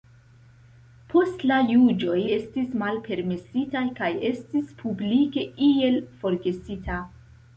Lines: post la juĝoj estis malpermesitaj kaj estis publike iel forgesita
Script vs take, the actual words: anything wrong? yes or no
no